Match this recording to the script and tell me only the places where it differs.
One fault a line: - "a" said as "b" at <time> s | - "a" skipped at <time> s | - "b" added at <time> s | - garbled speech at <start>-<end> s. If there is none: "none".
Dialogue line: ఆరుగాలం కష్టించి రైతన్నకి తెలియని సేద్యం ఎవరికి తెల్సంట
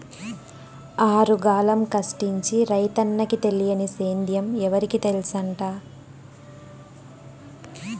none